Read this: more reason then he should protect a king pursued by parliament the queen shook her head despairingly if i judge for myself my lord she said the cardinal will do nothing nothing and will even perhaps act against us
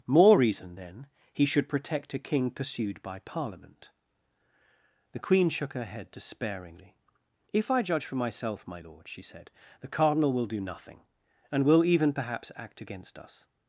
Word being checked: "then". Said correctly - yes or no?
yes